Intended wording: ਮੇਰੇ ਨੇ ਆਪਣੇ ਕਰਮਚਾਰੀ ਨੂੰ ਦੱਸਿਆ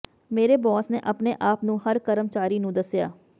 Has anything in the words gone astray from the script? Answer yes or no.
yes